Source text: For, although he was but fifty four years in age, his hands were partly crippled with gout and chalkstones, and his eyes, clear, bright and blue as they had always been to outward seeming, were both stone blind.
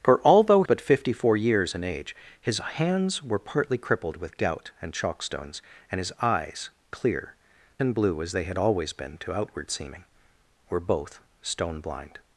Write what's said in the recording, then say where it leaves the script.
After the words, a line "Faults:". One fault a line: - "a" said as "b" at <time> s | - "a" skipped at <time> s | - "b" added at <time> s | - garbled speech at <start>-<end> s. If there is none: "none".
For, although but fifty four years in age, his hands were partly crippled with gout and chalkstones, and his eyes, clear, and blue as they had always been to outward seeming, were both stone blind.
Faults:
- "he was" skipped at 0.6 s
- "bright" skipped at 7.3 s